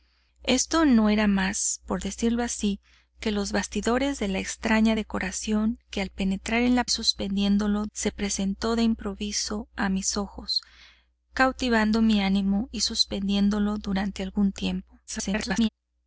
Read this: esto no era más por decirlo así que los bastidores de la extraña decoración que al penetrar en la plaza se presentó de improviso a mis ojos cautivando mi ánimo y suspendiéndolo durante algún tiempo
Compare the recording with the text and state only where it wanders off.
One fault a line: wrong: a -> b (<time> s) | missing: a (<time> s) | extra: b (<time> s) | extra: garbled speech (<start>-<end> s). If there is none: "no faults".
wrong: plaza -> suspendiéndolo (6.9 s)
extra: garbled speech (15.1-15.7 s)